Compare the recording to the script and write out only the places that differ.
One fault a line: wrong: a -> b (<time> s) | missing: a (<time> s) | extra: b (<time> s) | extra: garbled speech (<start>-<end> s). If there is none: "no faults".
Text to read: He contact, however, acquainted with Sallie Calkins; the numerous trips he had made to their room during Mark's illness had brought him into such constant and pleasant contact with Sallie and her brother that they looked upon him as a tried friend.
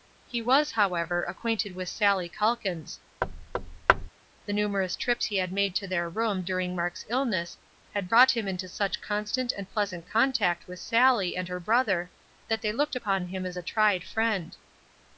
wrong: contact -> was (0.4 s)